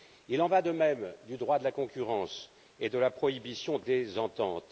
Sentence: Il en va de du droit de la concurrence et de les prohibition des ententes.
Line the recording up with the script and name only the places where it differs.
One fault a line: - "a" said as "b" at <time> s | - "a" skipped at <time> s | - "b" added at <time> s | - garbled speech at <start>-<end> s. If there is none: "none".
- "même" added at 0.7 s
- "les" said as "la" at 3.0 s